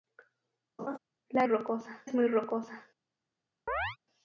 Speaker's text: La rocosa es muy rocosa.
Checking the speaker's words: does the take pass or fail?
pass